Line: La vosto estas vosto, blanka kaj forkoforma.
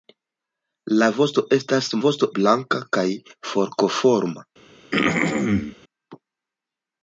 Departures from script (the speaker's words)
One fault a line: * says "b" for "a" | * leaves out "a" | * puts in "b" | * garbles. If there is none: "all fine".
all fine